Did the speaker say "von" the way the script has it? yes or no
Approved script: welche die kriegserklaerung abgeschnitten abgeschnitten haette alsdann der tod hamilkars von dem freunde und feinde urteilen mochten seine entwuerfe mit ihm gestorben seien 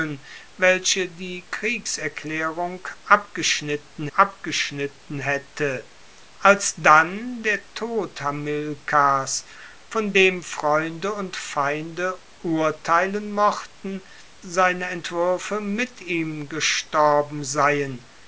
yes